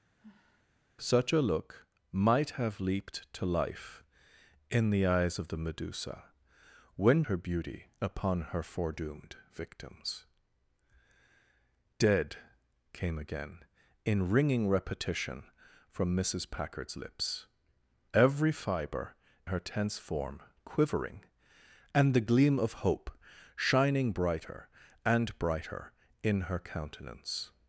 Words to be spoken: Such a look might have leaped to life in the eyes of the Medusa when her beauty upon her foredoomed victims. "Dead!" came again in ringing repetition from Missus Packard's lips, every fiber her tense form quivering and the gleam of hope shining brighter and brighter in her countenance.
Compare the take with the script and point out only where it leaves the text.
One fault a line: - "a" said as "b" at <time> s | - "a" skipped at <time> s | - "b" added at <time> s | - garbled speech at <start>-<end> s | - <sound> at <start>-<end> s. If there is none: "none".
- sigh at 0.2-0.7 s